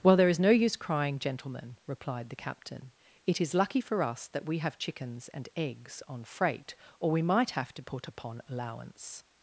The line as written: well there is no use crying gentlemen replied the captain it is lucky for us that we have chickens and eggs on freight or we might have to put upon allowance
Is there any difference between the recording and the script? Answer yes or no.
no